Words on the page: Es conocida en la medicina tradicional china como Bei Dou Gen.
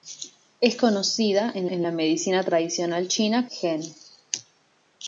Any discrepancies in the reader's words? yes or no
yes